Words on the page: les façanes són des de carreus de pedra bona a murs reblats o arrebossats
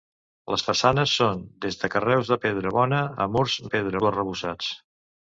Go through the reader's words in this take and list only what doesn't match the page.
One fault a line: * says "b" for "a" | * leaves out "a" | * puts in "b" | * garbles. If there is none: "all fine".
* says "pedra" for "reblats"